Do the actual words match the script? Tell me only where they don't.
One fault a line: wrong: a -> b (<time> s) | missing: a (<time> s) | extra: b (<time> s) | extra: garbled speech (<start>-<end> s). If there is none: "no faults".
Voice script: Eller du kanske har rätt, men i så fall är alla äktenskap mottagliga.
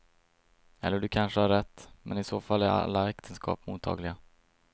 no faults